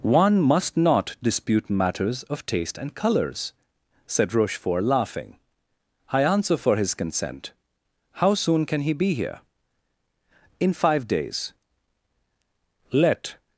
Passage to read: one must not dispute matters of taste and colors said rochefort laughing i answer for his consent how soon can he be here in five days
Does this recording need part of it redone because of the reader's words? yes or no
yes